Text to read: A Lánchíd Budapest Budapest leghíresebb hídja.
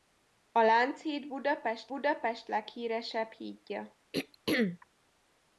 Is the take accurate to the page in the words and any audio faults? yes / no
no